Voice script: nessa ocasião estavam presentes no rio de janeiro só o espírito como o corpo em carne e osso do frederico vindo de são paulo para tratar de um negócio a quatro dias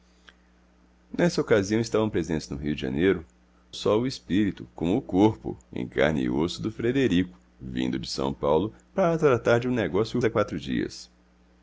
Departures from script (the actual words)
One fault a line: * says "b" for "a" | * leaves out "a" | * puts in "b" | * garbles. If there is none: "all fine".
all fine